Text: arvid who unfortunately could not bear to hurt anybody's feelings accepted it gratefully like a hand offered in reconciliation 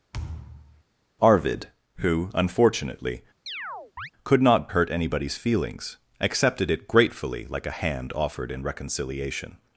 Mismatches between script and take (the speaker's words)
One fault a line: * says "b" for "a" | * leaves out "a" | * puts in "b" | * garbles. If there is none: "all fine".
* leaves out "bear to"